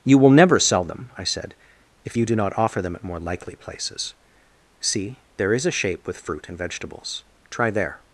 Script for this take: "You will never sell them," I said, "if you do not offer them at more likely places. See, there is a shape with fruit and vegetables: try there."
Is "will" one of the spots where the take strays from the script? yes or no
no